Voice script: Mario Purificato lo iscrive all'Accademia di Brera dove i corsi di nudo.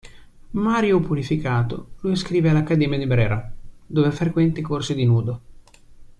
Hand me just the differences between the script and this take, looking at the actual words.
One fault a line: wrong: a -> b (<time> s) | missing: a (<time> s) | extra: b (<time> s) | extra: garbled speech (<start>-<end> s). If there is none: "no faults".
extra: frequenta (4.1 s)